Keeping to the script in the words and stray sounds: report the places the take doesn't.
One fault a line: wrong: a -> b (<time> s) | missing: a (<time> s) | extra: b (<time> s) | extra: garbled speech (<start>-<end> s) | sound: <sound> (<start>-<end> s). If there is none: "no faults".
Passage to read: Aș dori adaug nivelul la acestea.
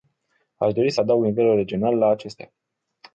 extra: să (0.9 s)
extra: regional (1.5 s)